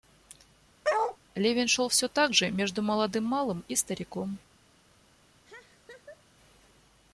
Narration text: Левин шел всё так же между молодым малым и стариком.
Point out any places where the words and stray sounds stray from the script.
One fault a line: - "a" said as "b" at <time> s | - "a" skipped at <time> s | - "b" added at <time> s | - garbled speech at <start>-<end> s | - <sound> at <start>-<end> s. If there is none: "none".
- bark at 0.8-1.2 s
- laugh at 5.4-6.2 s